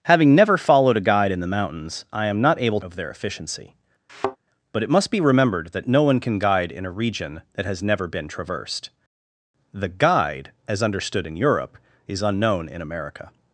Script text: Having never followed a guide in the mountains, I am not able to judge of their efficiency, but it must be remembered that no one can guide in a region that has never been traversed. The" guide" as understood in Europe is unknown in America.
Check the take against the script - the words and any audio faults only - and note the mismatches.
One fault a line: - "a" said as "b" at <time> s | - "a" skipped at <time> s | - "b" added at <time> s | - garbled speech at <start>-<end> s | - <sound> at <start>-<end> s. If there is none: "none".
- "to judge" skipped at 2.8 s
- thud at 4.1-4.4 s